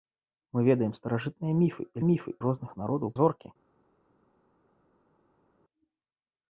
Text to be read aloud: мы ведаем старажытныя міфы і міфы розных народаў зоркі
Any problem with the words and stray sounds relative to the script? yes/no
no